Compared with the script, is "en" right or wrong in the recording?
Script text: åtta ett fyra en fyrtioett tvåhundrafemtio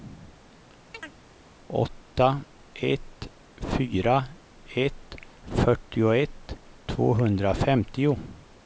wrong